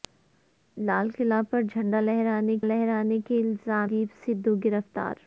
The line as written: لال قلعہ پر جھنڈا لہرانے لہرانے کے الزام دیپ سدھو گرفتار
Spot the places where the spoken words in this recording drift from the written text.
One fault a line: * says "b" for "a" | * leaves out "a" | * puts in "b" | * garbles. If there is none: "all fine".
all fine